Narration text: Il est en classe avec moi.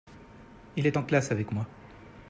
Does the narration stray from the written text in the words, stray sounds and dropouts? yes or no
no